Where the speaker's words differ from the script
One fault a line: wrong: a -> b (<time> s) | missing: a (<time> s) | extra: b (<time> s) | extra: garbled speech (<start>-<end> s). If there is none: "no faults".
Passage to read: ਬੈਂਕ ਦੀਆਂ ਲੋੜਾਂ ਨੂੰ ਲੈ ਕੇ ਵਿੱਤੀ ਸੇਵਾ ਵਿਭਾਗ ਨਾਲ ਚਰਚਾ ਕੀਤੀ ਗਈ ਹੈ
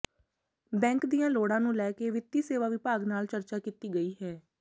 no faults